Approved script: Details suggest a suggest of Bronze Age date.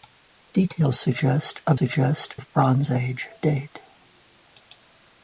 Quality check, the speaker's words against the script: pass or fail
pass